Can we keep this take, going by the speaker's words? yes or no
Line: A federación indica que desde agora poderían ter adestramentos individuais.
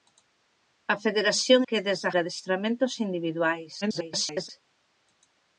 no